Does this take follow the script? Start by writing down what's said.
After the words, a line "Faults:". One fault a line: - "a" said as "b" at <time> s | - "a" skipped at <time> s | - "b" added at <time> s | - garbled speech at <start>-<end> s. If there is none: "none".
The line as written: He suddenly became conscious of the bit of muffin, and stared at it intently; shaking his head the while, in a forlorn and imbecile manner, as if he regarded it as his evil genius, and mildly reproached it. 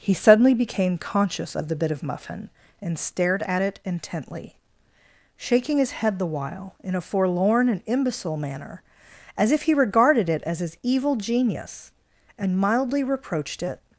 He suddenly became conscious of the bit of muffin, and stared at it intently; shaking his head the while, in a forlorn and imbecile manner, as if he regarded it as his evil genius, and mildly reproached it.
Faults:
none